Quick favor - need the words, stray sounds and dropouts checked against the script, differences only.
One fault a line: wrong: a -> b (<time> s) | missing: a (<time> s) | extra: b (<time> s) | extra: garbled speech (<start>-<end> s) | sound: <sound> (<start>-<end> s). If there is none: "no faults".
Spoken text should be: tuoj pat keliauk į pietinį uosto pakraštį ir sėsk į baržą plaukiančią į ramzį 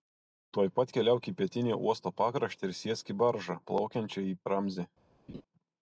sound: laugh (5.3-5.4 s)